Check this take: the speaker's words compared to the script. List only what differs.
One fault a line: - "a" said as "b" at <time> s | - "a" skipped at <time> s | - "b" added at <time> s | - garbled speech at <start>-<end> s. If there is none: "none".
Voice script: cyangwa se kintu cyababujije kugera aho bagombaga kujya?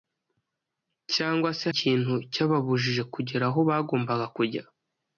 none